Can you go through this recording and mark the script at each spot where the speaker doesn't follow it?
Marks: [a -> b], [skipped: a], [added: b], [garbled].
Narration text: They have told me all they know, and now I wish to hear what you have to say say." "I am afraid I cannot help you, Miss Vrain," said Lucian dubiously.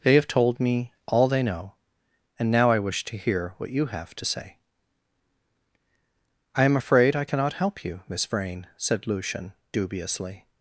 They have told me all they know, and now I wish to hear what you have to say [skipped: say."] "I am afraid I cannot help you, Miss Vrain," said Lucian dubiously.